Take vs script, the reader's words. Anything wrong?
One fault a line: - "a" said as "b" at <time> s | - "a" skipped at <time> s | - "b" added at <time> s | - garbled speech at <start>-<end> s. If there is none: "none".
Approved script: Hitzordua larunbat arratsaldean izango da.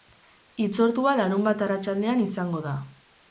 none